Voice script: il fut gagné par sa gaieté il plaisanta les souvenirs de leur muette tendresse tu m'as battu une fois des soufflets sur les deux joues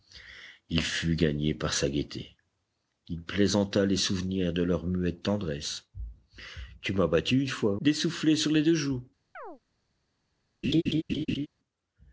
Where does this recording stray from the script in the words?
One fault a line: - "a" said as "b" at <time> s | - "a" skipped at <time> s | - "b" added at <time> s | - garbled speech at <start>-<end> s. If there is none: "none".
none